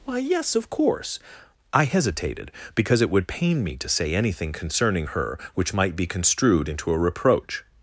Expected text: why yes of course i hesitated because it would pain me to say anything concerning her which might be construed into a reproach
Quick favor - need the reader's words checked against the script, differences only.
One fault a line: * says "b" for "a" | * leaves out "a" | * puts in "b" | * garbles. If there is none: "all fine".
all fine